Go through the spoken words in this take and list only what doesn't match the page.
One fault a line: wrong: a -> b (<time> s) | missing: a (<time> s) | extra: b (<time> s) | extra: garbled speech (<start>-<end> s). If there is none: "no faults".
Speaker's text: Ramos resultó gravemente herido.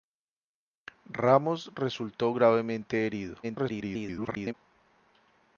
extra: garbled speech (3.4-4.5 s)